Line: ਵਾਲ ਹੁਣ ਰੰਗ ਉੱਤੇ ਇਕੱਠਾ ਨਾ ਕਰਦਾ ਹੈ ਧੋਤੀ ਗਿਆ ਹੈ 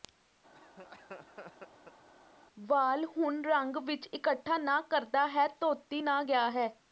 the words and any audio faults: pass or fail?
fail